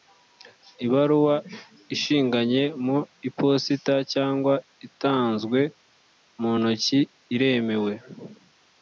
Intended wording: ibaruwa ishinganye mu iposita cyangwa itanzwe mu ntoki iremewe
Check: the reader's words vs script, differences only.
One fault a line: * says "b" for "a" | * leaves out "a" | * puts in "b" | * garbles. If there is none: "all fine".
all fine